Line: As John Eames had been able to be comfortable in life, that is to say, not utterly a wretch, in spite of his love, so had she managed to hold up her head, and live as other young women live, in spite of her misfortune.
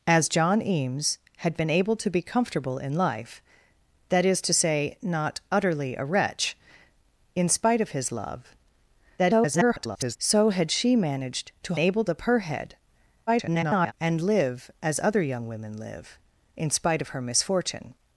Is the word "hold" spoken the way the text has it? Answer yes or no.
no